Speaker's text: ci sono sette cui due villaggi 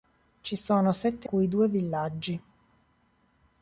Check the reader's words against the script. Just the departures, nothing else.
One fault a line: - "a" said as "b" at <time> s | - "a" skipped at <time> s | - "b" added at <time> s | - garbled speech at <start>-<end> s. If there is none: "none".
none